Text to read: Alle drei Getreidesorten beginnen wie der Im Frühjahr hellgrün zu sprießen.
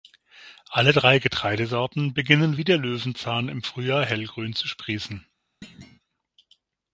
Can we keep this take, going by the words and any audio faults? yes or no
no